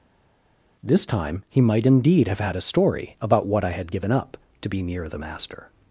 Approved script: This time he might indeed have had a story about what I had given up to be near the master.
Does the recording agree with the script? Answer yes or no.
yes